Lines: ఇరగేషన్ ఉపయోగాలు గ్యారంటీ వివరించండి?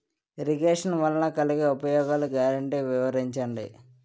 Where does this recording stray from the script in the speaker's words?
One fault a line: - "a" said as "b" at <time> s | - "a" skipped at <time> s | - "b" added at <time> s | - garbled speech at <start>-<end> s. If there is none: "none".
- "వలన కలిగే" added at 0.9 s